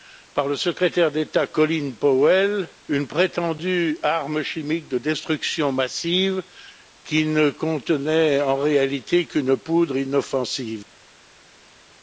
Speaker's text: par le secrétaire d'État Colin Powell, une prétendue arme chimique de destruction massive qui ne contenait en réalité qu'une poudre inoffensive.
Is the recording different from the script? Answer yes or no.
no